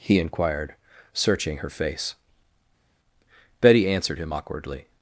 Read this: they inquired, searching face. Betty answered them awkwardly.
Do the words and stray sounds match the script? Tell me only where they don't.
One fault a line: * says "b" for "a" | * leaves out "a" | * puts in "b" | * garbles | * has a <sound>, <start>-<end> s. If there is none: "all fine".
* says "he" for "they"
* puts in "her"
* says "him" for "them"